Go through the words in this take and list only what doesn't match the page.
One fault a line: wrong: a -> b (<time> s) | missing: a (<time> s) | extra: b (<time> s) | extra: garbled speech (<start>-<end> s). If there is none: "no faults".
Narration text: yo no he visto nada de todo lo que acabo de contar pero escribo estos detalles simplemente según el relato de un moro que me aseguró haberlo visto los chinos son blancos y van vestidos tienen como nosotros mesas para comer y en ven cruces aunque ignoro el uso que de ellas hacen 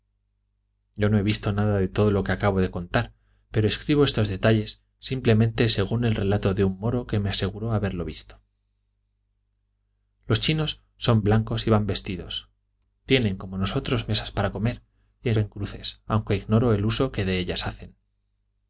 no faults